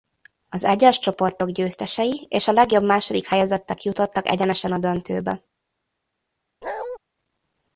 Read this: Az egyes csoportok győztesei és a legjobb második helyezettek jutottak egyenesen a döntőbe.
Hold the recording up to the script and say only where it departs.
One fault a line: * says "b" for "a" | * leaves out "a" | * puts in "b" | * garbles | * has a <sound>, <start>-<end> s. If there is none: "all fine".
* has a bark, 6.6-7.0 s